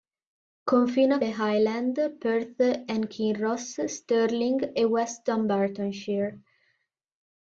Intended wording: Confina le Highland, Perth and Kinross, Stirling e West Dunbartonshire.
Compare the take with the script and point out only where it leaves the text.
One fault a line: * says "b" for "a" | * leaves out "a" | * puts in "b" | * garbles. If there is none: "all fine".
all fine